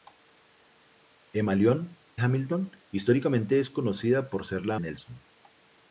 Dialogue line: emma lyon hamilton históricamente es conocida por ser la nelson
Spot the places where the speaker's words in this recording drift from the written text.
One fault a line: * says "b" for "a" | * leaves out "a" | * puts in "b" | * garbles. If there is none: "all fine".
all fine